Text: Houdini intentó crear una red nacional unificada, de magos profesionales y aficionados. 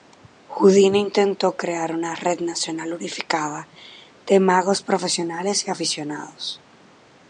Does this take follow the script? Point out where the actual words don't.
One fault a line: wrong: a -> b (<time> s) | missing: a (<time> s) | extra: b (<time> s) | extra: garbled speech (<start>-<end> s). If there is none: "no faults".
no faults